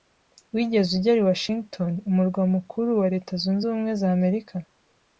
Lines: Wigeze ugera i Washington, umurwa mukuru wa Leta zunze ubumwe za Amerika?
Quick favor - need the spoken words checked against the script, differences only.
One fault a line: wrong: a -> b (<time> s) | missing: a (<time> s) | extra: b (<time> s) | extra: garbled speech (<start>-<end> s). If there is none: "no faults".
no faults